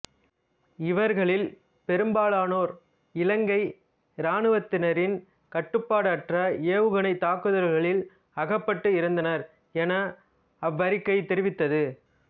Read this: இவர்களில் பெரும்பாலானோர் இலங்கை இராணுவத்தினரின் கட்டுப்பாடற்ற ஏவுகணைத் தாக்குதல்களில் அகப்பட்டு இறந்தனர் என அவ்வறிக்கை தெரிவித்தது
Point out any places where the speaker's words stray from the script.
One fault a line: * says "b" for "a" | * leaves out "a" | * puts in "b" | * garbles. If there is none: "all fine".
all fine